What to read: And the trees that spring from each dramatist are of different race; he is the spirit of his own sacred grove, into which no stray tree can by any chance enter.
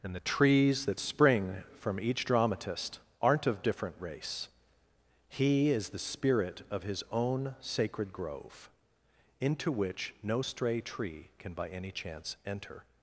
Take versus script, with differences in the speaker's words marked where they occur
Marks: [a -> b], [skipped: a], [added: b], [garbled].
And the trees that spring from each dramatist [are -> aren't] of different race; he is the spirit of his own sacred grove, into which no stray tree can by any chance enter.